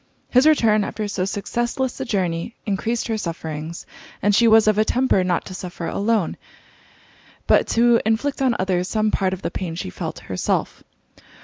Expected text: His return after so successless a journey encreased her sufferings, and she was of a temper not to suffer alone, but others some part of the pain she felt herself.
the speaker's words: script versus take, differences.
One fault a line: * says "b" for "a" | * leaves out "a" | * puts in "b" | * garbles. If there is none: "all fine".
* puts in "to inflict on"